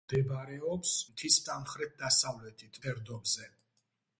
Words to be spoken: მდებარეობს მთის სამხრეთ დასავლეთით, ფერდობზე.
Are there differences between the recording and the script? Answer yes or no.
no